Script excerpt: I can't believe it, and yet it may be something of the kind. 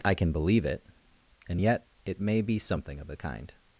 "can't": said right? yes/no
no